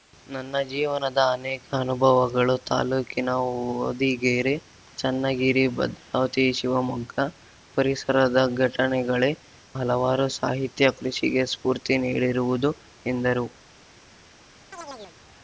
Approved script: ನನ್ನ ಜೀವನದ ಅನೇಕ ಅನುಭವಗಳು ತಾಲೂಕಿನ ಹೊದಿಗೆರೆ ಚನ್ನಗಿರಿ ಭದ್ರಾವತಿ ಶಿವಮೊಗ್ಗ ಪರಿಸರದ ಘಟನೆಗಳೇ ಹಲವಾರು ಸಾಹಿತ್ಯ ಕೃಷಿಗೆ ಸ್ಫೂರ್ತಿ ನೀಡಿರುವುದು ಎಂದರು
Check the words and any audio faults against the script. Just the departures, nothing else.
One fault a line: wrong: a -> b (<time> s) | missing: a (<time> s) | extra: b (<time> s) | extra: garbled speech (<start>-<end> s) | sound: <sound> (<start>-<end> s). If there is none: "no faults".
sound: chirp (14.7-15.2 s)